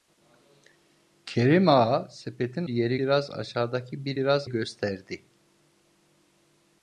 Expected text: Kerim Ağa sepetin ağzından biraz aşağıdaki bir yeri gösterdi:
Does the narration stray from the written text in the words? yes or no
yes